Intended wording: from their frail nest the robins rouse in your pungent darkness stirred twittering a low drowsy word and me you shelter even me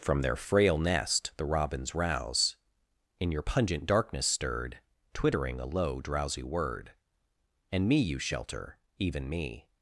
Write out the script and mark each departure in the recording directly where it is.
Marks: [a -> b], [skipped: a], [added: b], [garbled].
from their frail nest the robins rouse in your pungent darkness stirred twittering a low drowsy word and me you shelter even me